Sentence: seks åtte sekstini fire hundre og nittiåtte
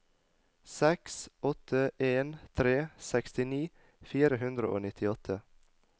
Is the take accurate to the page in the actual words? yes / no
no